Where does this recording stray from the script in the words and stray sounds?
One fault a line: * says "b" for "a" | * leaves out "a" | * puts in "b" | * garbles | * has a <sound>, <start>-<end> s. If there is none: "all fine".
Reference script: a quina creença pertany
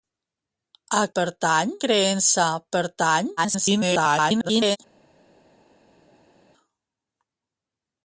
* says "pertany" for "quina"
* garbles